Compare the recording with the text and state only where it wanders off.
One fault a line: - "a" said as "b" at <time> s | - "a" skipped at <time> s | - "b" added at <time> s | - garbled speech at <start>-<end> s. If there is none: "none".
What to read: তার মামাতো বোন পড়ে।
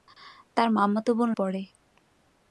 none